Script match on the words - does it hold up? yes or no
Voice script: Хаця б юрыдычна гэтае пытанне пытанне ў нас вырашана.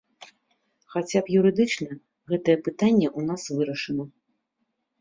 no